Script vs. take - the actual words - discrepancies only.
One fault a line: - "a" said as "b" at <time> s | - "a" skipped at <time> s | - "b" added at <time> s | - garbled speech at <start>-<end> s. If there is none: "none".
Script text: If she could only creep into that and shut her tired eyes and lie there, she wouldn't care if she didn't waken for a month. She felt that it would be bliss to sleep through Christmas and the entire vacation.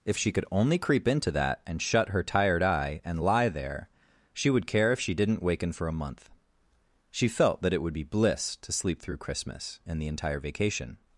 - "eyes" said as "eye" at 2.6 s
- "wouldn't" said as "would" at 4.5 s